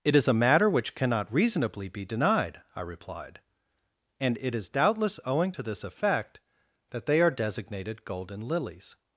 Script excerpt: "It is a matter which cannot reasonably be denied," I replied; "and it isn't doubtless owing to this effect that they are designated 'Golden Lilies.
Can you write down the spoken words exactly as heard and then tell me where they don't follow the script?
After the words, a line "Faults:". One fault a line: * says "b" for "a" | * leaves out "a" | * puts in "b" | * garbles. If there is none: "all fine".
"It is a matter which cannot reasonably be denied," I replied; "and it is doubtless owing to this effect that they are designated 'Golden Lilies.
Faults:
* says "is" for "isn't"